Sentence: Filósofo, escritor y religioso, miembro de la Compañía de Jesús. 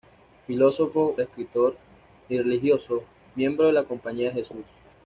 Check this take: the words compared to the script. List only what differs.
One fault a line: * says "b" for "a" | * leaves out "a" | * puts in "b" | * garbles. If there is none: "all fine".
all fine